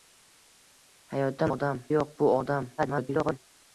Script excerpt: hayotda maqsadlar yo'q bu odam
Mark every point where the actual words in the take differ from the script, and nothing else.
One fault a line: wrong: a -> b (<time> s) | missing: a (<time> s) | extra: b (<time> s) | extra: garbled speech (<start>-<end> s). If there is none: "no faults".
wrong: maqsadlar -> odam (1.5 s)
extra: garbled speech (2.8-3.4 s)